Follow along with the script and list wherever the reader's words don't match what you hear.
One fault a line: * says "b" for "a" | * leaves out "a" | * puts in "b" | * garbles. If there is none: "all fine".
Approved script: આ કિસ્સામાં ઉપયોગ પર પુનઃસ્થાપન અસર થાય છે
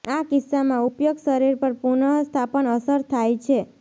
* puts in "શરીર"